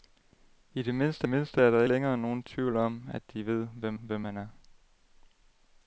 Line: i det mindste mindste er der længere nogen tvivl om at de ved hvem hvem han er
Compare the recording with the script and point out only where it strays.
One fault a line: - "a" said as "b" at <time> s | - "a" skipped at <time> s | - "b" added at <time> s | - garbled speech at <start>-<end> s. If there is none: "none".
none